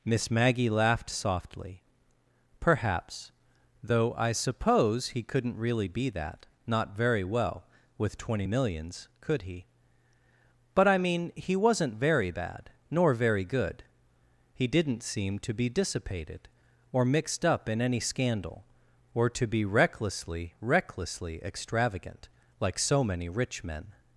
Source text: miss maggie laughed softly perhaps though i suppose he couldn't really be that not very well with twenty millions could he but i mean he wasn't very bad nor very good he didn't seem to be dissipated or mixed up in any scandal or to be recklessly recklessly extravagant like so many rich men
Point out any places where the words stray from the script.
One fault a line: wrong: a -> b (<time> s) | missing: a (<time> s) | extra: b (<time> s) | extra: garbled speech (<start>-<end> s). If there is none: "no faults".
no faults